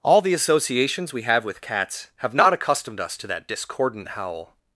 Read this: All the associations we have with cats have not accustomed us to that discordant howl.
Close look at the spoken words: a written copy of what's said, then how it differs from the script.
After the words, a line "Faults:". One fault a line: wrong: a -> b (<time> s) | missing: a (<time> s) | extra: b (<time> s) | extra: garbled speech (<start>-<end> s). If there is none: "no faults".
All the associations we have with cats have not accustomed us to that discordant howl.
Faults:
no faults